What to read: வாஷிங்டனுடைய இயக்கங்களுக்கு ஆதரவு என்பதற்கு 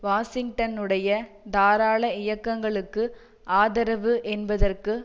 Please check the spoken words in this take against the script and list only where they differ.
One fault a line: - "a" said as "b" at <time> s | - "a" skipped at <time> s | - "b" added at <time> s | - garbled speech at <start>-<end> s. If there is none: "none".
- "தாராள" added at 1.5 s